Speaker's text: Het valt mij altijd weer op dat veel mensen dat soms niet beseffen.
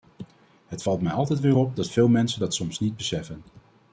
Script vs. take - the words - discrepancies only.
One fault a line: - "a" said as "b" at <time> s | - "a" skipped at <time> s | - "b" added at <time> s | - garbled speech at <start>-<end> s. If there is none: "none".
none